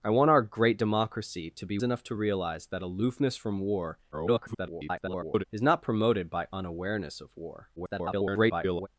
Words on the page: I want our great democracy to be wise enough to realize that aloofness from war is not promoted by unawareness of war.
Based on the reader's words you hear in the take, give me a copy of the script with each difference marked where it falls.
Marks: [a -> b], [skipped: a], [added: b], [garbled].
I want our great democracy to be [skipped: wise] enough to realize that aloofness from war [garbled] is not promoted by unawareness of war. [garbled]